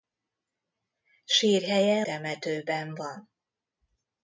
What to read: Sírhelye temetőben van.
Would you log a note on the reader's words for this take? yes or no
no